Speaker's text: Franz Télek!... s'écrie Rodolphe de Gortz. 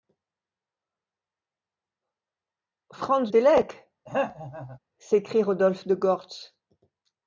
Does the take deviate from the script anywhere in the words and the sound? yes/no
yes